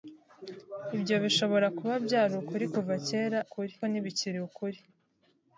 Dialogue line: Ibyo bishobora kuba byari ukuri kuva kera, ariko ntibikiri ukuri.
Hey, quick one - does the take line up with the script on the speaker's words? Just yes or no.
no